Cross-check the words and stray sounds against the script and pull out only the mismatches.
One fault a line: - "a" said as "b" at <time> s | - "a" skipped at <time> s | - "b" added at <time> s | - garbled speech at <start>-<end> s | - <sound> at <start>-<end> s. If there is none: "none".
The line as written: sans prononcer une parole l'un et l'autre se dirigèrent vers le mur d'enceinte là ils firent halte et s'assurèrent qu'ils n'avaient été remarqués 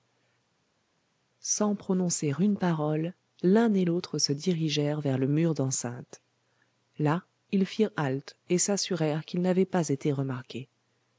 - "pas" added at 9.7 s